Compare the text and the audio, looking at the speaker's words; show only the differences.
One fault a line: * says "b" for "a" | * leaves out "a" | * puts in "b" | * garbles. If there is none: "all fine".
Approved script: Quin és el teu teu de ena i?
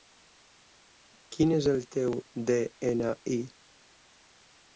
* leaves out "teu"